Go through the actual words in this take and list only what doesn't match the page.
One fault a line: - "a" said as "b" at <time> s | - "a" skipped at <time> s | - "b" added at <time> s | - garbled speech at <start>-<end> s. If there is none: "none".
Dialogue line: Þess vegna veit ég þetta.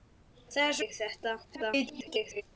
- "vegna veit" skipped at 0.8 s
- garbled speech at 1.4-2.4 s